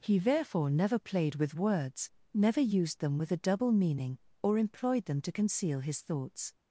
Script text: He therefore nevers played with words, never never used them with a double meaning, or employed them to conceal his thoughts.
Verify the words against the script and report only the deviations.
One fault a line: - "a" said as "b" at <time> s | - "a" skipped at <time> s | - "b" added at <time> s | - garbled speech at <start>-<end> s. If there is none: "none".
- "nevers" said as "never" at 0.7 s
- "never" skipped at 2.6 s